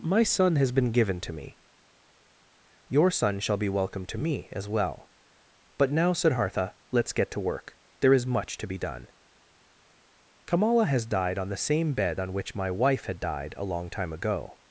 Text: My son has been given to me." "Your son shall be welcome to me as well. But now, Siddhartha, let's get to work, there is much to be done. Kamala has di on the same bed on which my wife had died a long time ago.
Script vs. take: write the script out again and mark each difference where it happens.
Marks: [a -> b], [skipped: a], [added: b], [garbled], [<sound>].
My son has been given to me." "Your son shall be welcome to me as well. But now, Siddhartha, let's get to work, there is much to be done. Kamala has [di -> died] on the same bed on which my wife had died a long time ago.